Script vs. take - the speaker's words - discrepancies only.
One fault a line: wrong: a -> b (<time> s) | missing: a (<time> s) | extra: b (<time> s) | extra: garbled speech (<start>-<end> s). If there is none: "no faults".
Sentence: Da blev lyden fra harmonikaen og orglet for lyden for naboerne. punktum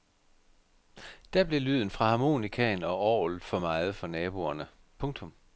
wrong: lyden -> meget (3.6 s)